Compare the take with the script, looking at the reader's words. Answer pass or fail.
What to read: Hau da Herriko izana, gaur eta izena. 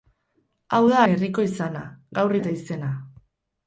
pass